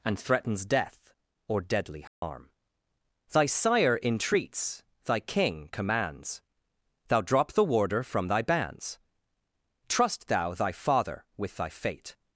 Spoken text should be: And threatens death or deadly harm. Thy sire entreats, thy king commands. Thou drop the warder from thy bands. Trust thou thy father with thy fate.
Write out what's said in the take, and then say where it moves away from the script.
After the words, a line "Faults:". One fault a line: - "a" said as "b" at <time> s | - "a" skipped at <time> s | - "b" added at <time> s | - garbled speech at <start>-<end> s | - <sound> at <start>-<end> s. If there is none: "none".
And threatens death or deadly harm. Thy sire entreats, thy king commands. Thou drop the warder from thy bands. Trust thou thy father with thy fate.
Faults:
- dropout at 2.1-2.2 s